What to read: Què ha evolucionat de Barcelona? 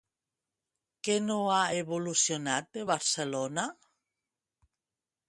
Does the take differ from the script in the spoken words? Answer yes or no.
yes